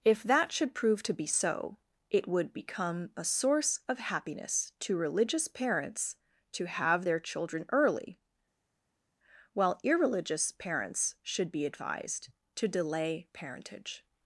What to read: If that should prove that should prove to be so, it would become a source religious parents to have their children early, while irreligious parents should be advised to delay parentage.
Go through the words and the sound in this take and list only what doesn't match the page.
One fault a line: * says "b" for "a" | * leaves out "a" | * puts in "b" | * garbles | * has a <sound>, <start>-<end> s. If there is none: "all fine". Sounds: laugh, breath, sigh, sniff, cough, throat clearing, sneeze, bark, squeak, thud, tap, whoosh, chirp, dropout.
* leaves out "that should prove"
* puts in "of happiness to"